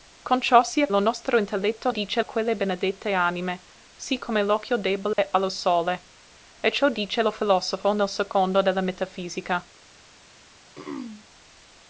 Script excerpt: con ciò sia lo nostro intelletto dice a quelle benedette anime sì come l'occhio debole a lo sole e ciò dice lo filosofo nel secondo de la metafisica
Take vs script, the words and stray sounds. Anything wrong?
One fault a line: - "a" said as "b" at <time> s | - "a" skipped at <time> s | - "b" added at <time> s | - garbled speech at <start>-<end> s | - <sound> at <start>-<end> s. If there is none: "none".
- dropout at 5.1-5.2 s
- throat clearing at 10.8-11.3 s